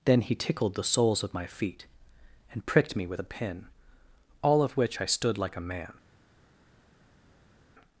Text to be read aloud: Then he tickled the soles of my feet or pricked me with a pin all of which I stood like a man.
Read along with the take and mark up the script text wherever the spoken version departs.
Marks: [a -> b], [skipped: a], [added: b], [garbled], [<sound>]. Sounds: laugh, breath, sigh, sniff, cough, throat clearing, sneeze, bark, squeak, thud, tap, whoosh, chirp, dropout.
Then he tickled the soles of my feet [or -> and] pricked me with a pin all of which I stood like a man.